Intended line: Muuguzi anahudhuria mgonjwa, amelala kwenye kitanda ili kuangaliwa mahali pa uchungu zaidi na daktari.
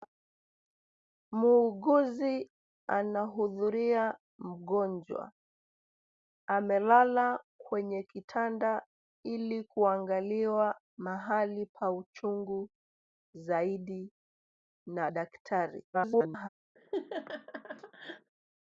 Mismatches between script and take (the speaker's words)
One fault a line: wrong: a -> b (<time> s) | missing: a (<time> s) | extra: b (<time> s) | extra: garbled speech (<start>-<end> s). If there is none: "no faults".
extra: garbled speech (15.9-16.5 s)